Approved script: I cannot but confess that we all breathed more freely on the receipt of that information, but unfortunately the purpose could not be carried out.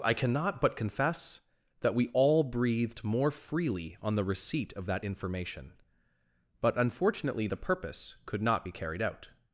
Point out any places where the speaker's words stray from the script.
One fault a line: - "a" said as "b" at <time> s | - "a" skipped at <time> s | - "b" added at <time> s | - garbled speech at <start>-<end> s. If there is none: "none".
none